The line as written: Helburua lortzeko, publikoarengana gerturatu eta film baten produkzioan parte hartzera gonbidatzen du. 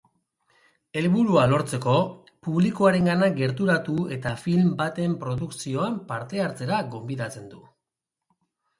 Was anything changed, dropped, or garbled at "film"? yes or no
no